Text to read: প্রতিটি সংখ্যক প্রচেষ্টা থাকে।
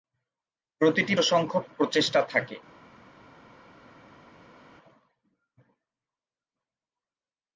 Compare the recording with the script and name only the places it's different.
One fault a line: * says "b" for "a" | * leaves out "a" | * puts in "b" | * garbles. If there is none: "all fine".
all fine